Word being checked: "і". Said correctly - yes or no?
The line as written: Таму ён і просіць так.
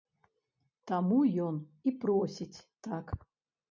yes